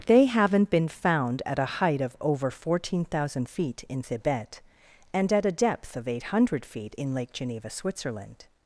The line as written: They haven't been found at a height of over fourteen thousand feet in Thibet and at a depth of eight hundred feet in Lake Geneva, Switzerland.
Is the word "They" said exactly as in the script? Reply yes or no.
yes